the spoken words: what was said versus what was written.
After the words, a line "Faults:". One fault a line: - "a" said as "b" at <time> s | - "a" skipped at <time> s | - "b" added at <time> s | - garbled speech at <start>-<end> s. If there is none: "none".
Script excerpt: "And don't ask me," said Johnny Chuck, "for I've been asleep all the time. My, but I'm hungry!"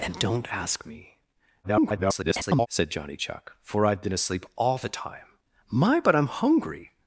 "And don't ask me," [garbled] said Johnny Chuck, "for I've been asleep all the time. My, but I'm hungry!"
Faults:
- garbled speech at 1.6-2.7 s